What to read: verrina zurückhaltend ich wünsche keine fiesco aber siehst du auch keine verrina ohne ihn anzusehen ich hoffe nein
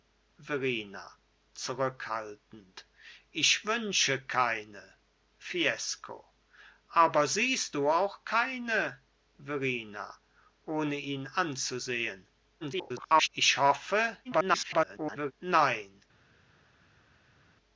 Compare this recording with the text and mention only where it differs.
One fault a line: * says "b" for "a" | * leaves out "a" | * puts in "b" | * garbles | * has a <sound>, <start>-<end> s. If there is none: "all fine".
* garbles
* garbles